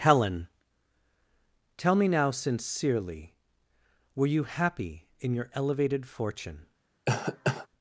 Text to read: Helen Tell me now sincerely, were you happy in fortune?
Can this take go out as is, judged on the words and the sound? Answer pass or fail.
fail